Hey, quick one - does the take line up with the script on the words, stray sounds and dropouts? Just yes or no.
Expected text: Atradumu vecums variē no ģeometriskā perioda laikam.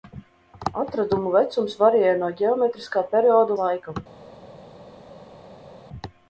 yes